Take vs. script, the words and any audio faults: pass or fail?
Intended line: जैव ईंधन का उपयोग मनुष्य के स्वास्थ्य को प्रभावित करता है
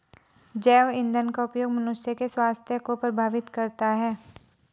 pass